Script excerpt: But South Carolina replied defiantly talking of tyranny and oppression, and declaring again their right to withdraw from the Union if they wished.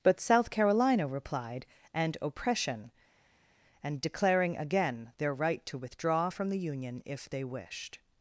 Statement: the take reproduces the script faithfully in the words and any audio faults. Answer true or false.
false